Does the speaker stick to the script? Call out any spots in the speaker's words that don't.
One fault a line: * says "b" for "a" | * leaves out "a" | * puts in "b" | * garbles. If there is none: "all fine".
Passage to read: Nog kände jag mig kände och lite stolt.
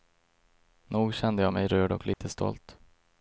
* says "rörd" for "kände"